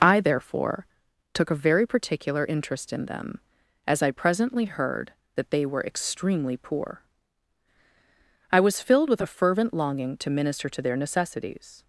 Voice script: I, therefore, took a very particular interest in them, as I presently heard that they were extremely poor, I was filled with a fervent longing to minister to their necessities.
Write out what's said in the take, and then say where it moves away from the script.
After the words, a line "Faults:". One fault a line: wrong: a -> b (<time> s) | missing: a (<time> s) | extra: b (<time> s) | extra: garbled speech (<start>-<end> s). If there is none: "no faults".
I, therefore, took a very particular interest in them, as I presently heard that they were extremely poor, I was filled with a fervent longing to minister to their necessities.
Faults:
no faults